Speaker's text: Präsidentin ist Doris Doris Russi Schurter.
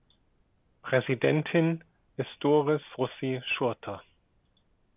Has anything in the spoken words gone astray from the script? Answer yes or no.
yes